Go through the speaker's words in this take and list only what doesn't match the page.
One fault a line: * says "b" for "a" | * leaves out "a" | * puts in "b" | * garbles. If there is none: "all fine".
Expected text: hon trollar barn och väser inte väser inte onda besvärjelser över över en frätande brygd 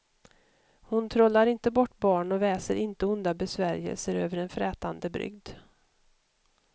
* puts in "inte bort"
* leaves out "väser inte"
* leaves out "över"